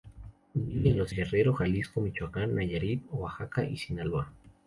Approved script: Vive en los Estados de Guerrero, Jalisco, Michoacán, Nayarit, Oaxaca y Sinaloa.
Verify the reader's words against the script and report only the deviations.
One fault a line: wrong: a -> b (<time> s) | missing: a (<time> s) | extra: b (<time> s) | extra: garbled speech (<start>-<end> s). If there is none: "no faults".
missing: Estados de (1.1 s)